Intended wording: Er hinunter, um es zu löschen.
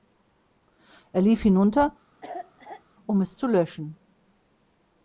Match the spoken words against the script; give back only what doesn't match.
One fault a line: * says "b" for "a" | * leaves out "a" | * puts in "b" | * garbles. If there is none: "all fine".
* puts in "lief"